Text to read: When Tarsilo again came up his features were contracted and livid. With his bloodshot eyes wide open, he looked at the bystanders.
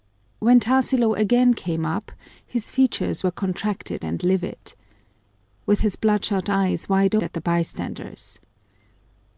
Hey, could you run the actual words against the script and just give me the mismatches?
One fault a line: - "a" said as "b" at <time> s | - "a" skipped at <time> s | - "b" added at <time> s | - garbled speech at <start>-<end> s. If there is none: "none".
- "open he looked" skipped at 7.2 s